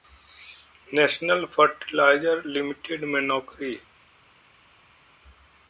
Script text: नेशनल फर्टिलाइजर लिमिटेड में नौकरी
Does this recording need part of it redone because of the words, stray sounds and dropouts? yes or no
no